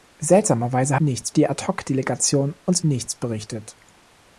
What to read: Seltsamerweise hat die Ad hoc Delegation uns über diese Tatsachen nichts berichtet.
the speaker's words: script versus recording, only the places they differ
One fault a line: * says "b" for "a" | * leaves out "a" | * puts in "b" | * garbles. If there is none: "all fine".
* says "nichts" for "hat"
* leaves out "über diese Tatsachen"